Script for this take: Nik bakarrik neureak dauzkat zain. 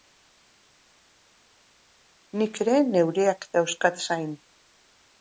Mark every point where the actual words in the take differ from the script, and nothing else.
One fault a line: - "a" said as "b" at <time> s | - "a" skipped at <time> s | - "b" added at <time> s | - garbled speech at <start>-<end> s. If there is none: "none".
- "bakarrik" said as "ere" at 2.7 s